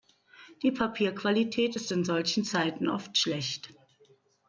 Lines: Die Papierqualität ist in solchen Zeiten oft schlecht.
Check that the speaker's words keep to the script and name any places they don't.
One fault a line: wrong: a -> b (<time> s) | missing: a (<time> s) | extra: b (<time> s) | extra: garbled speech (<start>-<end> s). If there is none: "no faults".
no faults